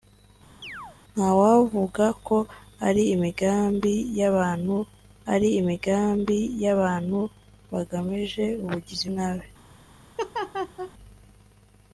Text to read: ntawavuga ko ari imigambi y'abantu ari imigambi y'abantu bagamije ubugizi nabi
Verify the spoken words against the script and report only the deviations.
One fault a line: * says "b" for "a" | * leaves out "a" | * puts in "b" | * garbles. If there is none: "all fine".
all fine